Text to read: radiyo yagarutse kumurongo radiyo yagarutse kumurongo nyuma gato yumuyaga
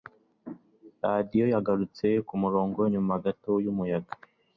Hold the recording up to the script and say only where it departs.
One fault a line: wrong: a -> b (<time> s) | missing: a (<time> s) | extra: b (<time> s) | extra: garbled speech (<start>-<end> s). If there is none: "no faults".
missing: radiyo yagarutse kumurongo (2.8 s)